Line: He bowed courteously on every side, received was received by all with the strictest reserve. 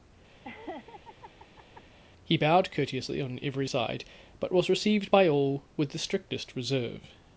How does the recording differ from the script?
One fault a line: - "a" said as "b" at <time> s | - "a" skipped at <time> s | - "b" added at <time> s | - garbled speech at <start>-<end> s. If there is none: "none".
- "received" said as "but" at 4.4 s